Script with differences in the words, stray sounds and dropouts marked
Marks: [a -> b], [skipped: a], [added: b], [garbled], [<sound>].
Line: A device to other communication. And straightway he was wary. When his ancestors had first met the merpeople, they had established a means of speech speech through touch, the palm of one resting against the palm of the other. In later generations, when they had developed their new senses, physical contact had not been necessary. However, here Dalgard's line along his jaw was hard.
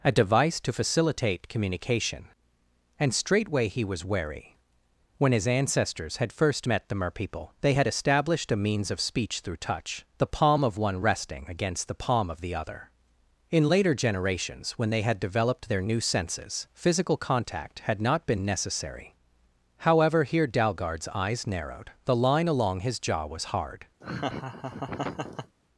A device to [other -> facilitate] communication. And straightway he was wary. When his ancestors had first met the merpeople, they had established a means of speech [skipped: speech] through touch, the palm of one resting against the palm of the other. In later generations, when they had developed their new senses, physical contact had not been necessary. However, here Dalgard's [added: eyes narrowed the] line along his jaw was hard. [laugh]